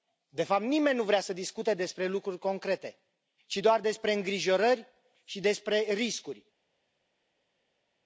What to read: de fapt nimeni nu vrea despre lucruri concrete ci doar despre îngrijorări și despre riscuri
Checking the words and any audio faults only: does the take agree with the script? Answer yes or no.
no